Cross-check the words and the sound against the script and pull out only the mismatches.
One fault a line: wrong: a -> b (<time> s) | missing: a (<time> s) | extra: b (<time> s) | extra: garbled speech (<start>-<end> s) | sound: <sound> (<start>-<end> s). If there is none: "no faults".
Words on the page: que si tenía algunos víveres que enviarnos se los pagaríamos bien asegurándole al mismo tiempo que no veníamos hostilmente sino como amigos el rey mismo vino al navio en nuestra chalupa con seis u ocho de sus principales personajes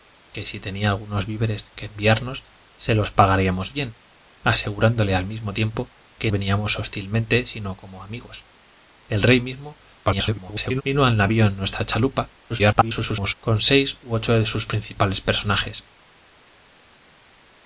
missing: no (6.3 s)
extra: garbled speech (10.0-10.8 s)
extra: garbled speech (12.5-13.3 s)